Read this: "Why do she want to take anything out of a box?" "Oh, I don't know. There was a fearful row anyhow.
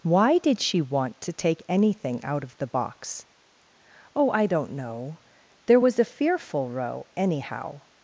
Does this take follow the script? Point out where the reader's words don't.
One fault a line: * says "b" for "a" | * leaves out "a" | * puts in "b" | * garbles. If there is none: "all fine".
* says "did" for "do"
* says "the" for "a"